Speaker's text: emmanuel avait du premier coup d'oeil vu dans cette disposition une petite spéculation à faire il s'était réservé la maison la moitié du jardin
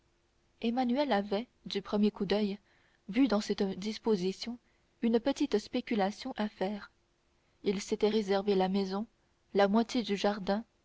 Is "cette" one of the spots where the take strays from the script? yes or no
no